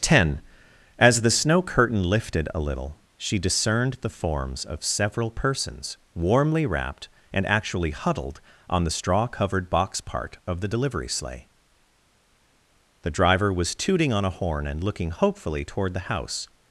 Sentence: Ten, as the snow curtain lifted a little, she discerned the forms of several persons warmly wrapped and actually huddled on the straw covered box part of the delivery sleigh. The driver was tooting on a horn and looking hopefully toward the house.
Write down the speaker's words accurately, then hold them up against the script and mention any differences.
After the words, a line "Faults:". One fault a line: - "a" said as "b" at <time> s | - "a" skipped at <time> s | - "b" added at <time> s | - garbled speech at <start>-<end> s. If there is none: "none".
Ten, as the snow curtain lifted a little, she discerned the forms of several persons warmly wrapped and actually huddled on the straw covered box part of the delivery sleigh. The driver was tooting on a horn and looking hopefully toward the house.
Faults:
none